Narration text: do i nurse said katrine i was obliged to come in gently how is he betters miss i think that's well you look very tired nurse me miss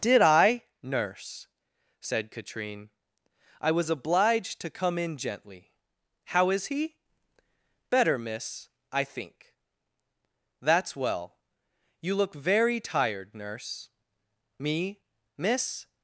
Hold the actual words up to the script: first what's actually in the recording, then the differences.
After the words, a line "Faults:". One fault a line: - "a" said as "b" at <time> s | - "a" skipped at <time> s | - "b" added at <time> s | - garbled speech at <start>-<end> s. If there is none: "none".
did i nurse said katrine i was obliged to come in gently how is he better miss i think that's well you look very tired nurse me miss
Faults:
- "do" said as "did" at 0.0 s
- "betters" said as "better" at 7.9 s